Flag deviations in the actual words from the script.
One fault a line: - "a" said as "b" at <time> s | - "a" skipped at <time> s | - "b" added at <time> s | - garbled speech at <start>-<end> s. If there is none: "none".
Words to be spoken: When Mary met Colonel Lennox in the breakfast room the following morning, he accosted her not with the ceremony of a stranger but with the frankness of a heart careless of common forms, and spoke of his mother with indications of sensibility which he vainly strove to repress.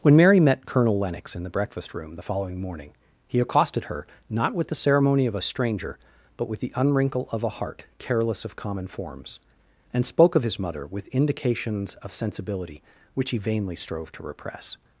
- "frankness" said as "unwrinkle" at 6.8 s